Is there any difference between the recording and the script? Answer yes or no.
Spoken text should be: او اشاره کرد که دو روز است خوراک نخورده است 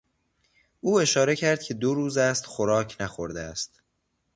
no